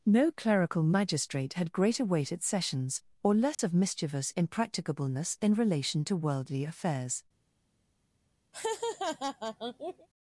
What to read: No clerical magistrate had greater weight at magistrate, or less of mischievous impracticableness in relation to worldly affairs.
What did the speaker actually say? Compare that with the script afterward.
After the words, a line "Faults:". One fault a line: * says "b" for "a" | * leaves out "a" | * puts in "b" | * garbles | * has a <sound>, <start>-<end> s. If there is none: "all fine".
No clerical magistrate had greater weight at sessions, or less of mischievous impracticableness in relation to worldly affairs.
Faults:
* says "sessions" for "magistrate"
* has a dropout, 3.5-3.6 s
* has a laugh, 8.5-10.1 s